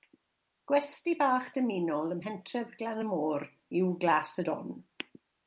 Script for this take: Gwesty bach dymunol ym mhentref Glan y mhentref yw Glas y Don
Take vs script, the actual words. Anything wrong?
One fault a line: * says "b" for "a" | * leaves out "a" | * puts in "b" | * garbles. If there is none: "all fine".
* says "môr" for "mhentref"